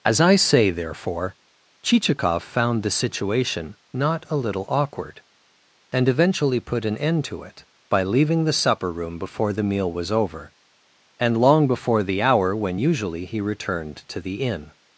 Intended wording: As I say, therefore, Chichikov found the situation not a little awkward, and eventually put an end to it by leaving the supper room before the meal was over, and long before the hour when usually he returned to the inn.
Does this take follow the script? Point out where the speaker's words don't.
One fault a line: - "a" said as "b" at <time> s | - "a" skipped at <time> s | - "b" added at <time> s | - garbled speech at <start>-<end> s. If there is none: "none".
none